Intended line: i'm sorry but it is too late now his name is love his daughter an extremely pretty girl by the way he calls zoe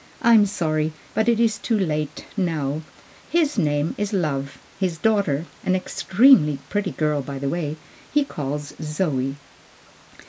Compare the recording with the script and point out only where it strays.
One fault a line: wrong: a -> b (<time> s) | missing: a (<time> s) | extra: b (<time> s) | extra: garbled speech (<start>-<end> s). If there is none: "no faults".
no faults